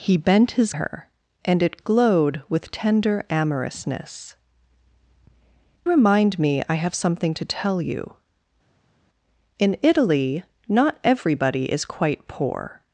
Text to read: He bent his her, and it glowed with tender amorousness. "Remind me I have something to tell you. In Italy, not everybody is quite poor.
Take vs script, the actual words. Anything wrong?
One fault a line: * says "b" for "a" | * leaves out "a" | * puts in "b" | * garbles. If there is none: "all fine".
all fine